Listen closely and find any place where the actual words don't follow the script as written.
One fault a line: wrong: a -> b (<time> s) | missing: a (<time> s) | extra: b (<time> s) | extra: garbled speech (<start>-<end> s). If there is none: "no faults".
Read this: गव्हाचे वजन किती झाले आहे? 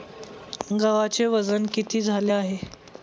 no faults